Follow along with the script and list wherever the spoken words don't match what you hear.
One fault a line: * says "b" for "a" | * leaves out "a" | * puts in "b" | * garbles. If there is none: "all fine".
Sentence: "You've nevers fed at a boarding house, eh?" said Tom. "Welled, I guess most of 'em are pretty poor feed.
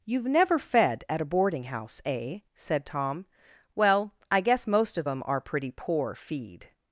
* says "never" for "nevers"
* says "Well" for "Welled"